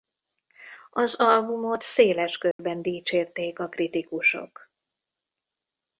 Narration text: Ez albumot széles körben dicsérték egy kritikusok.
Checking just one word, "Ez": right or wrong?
wrong